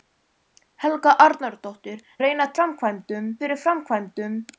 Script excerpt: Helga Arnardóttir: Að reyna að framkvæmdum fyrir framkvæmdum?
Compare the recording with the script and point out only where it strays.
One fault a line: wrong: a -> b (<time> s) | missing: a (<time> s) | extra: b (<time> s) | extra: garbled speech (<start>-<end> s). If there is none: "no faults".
no faults